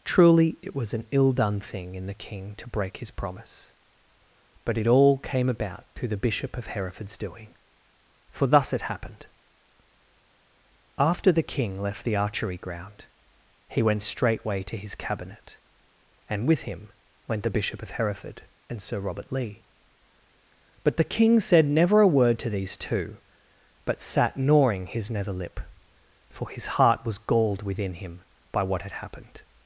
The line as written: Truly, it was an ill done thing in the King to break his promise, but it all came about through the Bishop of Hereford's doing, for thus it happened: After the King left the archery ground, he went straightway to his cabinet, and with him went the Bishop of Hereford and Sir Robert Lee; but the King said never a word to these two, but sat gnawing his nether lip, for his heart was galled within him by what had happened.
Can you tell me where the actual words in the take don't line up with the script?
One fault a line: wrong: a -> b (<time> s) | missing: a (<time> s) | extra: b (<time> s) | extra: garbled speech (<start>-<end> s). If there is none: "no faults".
no faults